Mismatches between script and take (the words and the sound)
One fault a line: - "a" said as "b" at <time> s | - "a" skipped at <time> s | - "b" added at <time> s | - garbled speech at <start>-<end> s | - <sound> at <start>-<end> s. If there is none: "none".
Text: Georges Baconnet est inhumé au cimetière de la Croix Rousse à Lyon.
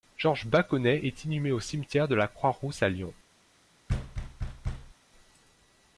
- thud at 3.9-4.9 s